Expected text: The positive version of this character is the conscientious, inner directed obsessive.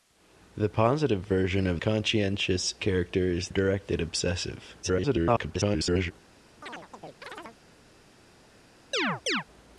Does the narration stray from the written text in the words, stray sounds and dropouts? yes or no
yes